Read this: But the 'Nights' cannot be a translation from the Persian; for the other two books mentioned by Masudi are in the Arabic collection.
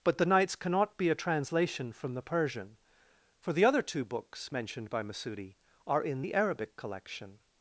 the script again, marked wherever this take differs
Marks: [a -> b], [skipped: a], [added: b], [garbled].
But the 'Nights' cannot be a translation from the Persian; for the other two books mentioned by Masudi are in the Arabic collection.